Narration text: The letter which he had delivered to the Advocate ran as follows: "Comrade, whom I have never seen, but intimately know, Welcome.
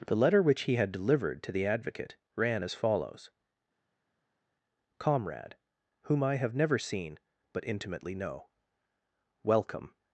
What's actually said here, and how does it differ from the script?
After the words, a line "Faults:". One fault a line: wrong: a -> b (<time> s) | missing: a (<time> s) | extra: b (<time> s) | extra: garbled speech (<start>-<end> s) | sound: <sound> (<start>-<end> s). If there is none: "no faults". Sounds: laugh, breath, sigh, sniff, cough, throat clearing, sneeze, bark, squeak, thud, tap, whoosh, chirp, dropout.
The letter which he had delivered to the Advocate ran as follows: "Comrade, whom I have never seen, but intimately know, Welcome.
Faults:
no faults